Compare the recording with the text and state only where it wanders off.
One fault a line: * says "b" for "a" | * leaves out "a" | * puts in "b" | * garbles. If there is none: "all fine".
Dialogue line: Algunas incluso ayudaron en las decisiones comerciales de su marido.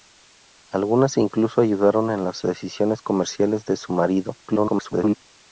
* garbles